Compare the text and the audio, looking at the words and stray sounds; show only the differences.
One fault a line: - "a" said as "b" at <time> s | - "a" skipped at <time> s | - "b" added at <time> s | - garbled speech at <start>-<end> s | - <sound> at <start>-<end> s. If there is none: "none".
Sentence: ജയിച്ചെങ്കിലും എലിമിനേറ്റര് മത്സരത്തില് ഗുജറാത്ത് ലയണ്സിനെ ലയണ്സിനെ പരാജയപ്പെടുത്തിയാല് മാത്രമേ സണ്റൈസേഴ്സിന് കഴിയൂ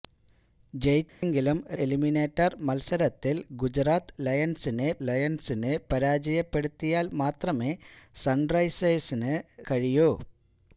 - dropout at 1.1-1.2 s